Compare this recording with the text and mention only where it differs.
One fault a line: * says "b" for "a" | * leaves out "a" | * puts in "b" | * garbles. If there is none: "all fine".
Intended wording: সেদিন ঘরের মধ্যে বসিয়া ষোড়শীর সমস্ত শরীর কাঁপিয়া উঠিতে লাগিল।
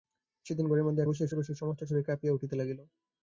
all fine